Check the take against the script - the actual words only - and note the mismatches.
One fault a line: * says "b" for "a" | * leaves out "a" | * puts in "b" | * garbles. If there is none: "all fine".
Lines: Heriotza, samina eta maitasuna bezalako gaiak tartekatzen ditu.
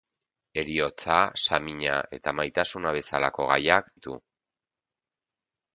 * leaves out "tartekatzen"